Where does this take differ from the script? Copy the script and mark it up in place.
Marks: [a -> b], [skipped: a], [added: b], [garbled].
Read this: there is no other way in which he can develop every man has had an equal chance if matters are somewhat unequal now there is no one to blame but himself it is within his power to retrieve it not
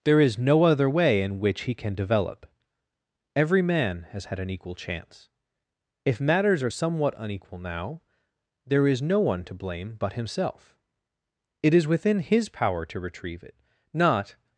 there is no other way in which he can develop every man has had an equal chance if matters are somewhat unequal now there is no one to blame but himself it is within his power to retrieve it not